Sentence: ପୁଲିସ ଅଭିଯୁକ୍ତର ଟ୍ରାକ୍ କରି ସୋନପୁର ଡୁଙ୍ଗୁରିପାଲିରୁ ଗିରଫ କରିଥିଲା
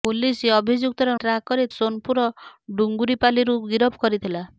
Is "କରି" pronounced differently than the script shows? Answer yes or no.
no